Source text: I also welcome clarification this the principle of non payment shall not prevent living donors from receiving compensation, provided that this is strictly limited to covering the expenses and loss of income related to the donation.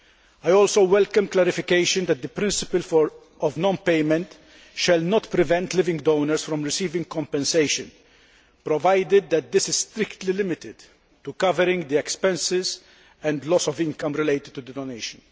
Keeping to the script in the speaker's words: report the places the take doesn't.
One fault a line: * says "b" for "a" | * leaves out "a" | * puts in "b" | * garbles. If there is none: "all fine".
* says "that" for "this"